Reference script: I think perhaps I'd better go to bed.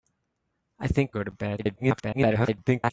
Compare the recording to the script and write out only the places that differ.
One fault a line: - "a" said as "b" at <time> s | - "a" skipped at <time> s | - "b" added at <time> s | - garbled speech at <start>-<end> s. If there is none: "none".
- "perhaps I'd better" skipped at 1.1 s
- garbled speech at 1.6-2.9 s